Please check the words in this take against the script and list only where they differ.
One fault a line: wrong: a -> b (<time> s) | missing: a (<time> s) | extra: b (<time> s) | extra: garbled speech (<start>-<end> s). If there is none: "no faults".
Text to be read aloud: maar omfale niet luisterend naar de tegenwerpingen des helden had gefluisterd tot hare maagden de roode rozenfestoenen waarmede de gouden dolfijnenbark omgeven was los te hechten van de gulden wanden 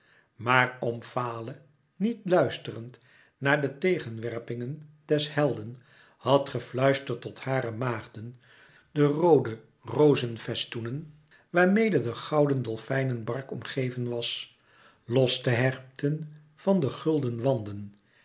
no faults